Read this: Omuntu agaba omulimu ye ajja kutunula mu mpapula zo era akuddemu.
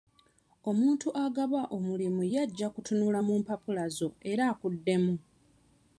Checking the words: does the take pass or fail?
pass